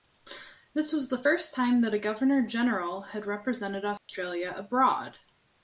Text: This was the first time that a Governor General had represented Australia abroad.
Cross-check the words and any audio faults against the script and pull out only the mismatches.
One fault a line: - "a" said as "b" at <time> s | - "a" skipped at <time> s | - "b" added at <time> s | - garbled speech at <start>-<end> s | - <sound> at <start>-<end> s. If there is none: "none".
- dropout at 4.0-4.1 s